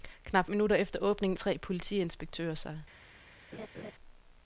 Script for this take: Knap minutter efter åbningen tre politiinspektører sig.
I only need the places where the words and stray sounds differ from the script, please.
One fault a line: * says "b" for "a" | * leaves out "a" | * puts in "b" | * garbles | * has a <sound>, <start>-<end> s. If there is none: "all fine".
* has a laugh, 3.5-3.9 s